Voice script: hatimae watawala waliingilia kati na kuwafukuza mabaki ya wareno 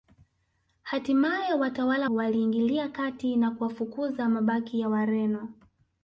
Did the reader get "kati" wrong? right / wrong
right